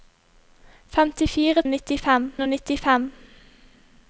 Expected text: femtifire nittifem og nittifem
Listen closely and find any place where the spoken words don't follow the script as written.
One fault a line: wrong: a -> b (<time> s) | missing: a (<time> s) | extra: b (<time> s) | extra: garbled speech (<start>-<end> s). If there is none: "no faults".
no faults